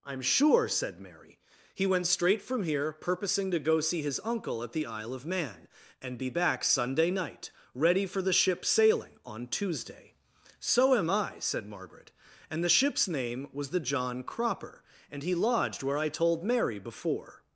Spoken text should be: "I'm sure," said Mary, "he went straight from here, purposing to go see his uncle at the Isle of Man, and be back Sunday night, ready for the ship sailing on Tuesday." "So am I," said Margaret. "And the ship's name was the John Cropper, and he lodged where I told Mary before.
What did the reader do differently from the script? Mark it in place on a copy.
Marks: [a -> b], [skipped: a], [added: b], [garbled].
"I'm sure," said Mary, "he went straight from here, purposing to go see his uncle at the Isle of Man, and be back Sunday night, ready for the ship sailing on Tuesday." "So am I," said Margaret. "And the ship's name was the John Cropper, and he lodged where I told Mary before.